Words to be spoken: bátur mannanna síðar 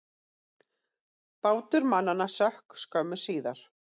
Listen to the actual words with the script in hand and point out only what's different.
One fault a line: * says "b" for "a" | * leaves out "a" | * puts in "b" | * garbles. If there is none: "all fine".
* puts in "sökk skömmu"